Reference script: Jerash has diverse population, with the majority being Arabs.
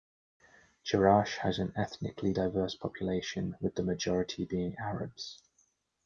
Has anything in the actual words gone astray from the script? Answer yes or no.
yes